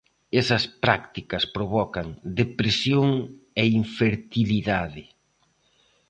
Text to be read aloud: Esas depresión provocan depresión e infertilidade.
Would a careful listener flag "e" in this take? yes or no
no